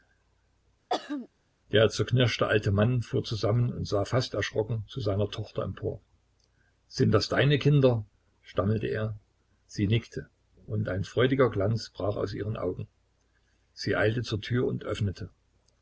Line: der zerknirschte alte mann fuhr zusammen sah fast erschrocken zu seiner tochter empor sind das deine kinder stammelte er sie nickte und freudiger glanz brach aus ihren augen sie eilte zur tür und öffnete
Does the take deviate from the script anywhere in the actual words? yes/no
yes